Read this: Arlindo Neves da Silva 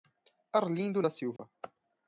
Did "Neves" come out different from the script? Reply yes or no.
yes